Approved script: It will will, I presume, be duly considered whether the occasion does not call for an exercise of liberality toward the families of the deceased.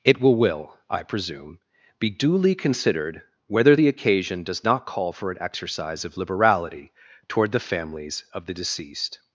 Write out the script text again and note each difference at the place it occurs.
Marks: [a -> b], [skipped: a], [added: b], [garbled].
It will will, I presume, be duly considered whether the occasion does not call for an exercise of liberality toward the families of the deceased.